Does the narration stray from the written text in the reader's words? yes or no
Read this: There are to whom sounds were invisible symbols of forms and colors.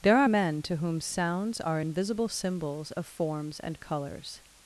yes